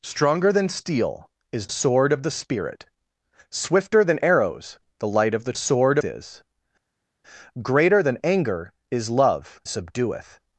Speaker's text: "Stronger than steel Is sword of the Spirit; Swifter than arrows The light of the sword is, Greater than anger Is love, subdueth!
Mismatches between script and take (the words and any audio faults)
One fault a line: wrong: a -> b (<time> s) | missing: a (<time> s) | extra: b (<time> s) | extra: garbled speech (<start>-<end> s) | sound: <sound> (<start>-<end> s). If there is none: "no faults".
no faults